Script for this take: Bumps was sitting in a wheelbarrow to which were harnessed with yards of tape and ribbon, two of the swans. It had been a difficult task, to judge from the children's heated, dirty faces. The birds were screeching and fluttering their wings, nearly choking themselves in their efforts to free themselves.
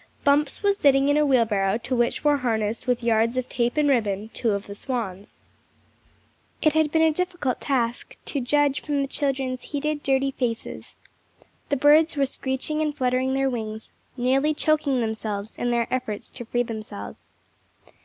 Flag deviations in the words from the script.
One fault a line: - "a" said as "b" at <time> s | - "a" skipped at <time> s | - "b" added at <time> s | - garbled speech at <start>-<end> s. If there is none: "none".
none